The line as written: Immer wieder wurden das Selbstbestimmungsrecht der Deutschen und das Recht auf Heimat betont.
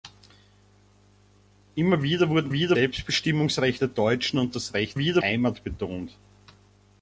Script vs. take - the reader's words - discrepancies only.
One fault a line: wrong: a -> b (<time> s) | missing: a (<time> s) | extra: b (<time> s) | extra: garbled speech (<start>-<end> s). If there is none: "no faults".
wrong: das -> wieder (2.5 s)
wrong: auf -> wieder (5.0 s)